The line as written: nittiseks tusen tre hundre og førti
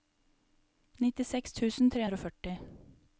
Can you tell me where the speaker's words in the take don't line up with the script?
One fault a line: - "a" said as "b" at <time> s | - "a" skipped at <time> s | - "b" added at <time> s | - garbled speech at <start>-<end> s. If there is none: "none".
none